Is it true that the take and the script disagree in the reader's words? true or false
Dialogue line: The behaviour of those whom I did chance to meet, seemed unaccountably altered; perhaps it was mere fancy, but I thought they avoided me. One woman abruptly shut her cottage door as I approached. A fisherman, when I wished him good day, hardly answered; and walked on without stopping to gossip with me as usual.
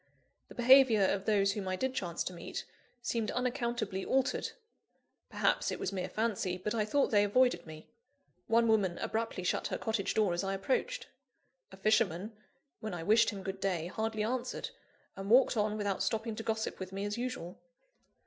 false